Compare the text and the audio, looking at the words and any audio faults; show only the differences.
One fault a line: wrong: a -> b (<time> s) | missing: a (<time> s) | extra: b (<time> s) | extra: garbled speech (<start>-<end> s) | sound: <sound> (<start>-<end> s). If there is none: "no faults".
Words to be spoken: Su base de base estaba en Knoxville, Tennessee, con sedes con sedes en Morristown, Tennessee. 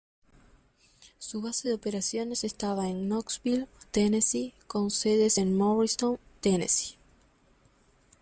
wrong: base -> operaciones (1.7 s)
missing: con sedes (5.4 s)